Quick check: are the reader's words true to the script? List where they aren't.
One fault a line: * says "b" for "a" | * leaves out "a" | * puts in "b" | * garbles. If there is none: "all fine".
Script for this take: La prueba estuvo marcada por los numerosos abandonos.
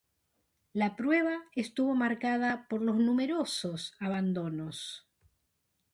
all fine